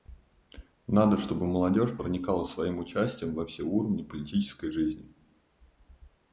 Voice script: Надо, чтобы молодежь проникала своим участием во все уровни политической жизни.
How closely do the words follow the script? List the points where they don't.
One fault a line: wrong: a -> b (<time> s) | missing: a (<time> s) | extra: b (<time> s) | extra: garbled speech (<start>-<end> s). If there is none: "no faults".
no faults